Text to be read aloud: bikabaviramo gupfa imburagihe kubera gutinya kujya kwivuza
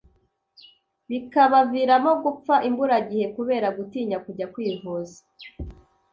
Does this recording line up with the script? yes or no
yes